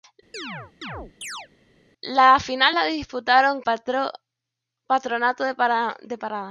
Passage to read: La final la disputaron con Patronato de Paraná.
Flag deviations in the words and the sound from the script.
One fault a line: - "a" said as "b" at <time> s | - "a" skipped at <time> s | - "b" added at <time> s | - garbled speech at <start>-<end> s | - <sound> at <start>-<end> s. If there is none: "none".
- chirp at 0.3-1.5 s
- "con" skipped at 3.6 s